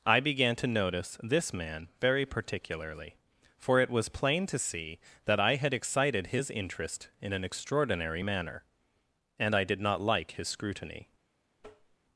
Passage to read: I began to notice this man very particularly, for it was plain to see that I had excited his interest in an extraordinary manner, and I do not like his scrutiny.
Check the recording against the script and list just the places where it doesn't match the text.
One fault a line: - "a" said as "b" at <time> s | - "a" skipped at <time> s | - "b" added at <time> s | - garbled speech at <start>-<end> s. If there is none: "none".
- "do" said as "did" at 9.6 s